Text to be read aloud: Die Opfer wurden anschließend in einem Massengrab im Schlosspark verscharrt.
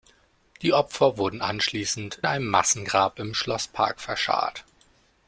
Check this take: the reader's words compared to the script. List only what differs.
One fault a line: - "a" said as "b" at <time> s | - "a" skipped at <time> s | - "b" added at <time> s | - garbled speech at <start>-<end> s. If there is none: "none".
- "in" skipped at 2.2 s